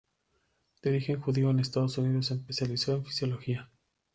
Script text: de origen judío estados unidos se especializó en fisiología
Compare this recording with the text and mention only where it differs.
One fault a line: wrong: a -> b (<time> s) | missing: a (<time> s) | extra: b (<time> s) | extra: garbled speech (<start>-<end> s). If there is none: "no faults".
extra: en (1.5 s)